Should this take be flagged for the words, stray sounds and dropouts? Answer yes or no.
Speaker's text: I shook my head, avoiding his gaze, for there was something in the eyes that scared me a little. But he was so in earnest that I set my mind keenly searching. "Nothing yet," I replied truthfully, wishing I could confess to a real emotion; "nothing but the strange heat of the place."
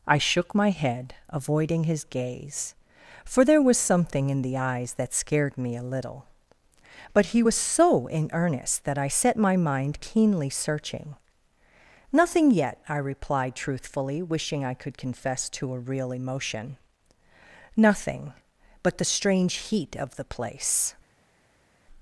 no